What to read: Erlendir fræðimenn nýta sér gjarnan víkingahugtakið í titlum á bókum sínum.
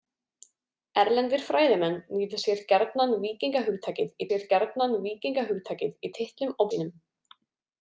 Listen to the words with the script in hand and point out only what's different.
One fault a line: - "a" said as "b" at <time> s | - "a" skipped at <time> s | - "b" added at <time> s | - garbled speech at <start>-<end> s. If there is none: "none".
- "sér gjarnan víkingahugtakið" added at 4.3 s
- "bókum" skipped at 6.6 s